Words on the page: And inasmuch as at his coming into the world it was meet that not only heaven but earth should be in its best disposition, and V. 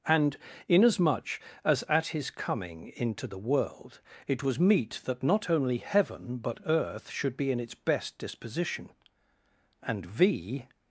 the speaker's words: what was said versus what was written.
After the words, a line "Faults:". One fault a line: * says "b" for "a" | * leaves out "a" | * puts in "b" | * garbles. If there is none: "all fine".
And inasmuch as at his coming into the world it was meet that not only heaven but earth should be in its best disposition, and V.
Faults:
all fine